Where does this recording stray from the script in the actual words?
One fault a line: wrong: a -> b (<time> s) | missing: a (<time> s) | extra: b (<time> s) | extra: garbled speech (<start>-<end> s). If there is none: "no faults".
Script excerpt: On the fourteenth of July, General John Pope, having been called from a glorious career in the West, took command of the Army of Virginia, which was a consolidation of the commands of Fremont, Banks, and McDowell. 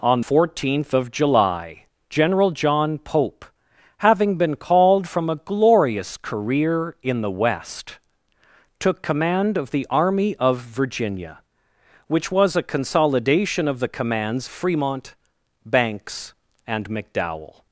missing: the (0.2 s)
missing: of (14.5 s)